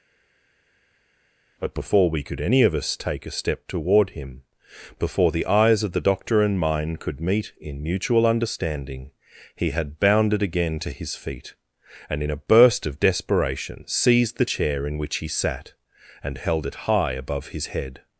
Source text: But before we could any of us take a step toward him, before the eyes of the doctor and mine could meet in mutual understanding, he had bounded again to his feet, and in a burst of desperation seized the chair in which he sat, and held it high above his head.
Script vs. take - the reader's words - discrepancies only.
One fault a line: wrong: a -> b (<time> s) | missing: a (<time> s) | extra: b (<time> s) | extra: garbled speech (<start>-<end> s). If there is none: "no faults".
no faults